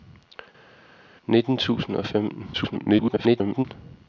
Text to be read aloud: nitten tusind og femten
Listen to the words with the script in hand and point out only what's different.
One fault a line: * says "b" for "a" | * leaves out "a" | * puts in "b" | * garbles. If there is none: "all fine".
* garbles